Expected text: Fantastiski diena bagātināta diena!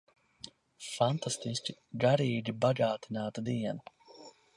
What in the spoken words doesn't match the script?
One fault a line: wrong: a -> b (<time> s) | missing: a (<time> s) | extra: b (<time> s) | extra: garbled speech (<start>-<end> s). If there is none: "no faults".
wrong: diena -> garīgi (2.0 s)